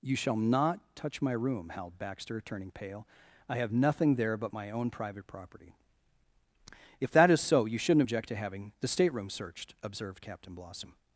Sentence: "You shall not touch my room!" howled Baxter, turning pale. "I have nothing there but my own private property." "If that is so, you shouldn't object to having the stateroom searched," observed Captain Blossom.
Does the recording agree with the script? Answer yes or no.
yes